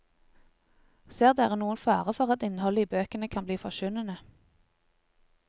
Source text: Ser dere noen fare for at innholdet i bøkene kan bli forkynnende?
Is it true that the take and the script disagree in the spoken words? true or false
false